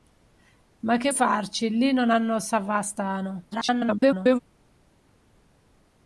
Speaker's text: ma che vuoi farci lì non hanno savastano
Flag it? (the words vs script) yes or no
yes